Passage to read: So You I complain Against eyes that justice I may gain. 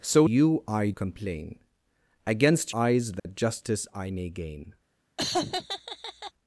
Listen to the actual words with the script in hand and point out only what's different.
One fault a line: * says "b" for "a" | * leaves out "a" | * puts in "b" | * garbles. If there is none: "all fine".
all fine